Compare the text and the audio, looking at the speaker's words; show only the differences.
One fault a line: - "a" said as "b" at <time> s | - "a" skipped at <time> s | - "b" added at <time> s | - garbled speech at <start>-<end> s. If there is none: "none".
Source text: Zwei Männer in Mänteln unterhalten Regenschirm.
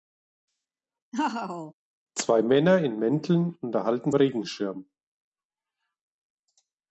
none